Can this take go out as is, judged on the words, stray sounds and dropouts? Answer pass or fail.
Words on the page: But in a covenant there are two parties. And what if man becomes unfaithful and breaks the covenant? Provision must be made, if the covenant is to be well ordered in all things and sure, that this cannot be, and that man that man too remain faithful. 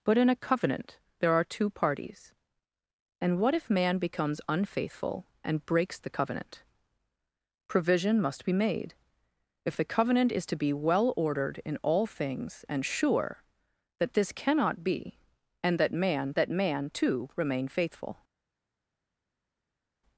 pass